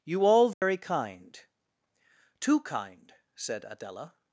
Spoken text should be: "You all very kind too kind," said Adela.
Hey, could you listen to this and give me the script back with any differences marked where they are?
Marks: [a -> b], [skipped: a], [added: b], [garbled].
"You all very kind too kind," said Adela.